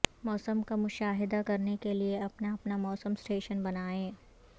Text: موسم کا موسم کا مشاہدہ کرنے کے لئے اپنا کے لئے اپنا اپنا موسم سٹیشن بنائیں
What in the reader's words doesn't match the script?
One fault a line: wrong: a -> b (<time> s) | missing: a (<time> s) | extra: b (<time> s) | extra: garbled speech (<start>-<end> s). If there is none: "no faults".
missing: موسم کا (0.8 s)
missing: کے لئے اپنا (2.5 s)